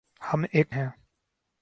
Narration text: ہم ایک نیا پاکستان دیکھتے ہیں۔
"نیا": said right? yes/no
no